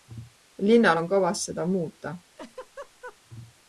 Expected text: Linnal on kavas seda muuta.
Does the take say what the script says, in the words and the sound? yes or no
no